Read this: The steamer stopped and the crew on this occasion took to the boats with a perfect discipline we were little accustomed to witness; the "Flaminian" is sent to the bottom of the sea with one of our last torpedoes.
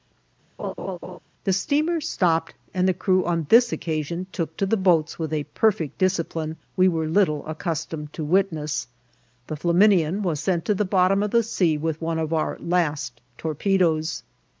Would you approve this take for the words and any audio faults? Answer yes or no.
no